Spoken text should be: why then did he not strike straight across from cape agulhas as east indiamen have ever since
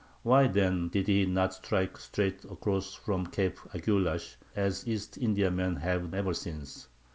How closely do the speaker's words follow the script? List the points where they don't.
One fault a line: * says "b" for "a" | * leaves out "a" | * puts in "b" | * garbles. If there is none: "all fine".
all fine